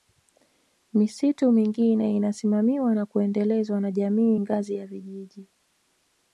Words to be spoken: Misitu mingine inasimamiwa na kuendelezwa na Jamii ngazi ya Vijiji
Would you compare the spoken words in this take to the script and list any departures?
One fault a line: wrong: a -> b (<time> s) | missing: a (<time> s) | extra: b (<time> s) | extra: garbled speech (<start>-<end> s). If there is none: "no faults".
no faults